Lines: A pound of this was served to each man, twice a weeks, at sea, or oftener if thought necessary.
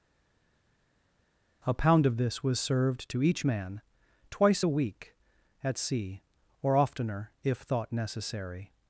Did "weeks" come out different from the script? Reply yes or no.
yes